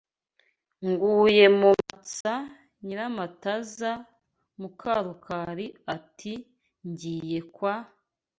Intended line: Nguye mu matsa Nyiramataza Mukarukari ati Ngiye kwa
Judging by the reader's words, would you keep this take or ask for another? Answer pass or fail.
pass